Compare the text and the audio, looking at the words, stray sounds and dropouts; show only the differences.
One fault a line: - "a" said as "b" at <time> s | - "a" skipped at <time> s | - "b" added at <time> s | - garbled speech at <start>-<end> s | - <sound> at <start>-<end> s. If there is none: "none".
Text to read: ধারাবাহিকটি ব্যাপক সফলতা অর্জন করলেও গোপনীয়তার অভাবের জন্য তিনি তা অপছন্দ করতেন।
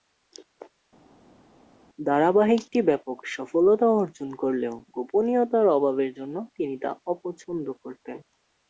none